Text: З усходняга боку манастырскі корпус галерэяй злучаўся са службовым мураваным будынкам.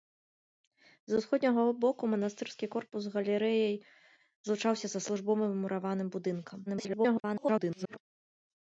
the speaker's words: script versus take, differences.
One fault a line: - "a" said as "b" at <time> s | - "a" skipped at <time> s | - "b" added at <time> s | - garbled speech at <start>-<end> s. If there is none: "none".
- garbled speech at 6.7-8.0 s